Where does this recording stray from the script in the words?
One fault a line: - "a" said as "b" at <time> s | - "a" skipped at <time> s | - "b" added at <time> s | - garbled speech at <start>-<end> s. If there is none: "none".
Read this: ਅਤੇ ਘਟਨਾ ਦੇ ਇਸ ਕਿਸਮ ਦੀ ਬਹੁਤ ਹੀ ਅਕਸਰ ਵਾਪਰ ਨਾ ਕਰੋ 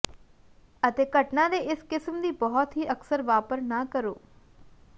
none